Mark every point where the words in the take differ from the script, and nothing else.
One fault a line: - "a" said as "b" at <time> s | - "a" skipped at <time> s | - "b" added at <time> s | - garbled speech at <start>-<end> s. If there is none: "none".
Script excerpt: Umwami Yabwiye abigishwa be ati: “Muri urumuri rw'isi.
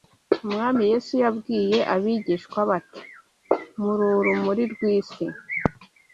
- "Yesu" added at 0.9 s